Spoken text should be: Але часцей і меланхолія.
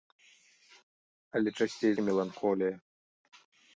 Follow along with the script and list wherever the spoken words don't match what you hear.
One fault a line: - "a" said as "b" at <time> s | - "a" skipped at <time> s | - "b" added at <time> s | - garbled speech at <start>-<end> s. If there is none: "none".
none